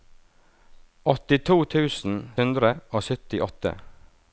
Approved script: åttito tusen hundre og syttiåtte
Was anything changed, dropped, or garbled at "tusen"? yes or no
no